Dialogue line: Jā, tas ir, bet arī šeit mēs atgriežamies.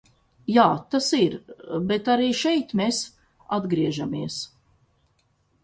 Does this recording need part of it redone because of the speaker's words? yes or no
no